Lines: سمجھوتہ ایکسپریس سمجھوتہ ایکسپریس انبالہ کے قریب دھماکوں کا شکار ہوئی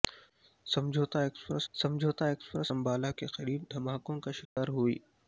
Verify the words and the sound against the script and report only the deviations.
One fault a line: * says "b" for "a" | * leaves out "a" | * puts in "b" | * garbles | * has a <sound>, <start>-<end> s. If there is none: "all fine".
* has a dropout, 4.5-4.6 s